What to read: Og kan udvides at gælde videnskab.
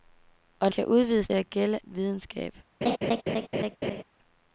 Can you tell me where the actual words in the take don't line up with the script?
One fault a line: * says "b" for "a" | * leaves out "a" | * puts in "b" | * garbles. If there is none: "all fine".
all fine